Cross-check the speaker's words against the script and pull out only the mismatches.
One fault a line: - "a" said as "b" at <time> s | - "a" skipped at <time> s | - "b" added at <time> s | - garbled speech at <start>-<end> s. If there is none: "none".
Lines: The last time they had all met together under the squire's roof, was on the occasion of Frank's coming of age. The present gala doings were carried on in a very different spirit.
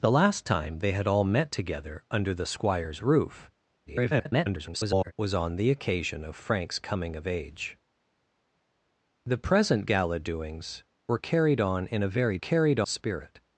- garbled speech at 3.9-5.1 s
- "different" said as "carried" at 12.4 s